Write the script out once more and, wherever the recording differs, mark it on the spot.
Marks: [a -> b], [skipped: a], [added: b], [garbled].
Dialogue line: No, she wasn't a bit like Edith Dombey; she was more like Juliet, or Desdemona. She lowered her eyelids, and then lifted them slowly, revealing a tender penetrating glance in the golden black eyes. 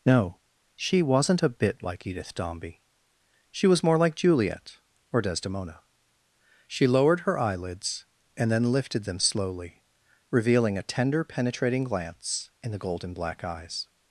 No, she wasn't a bit like Edith Dombey; she was more like Juliet, or Desdemona. She lowered her eyelids, and then lifted them slowly, revealing a tender penetrating glance in the golden black eyes.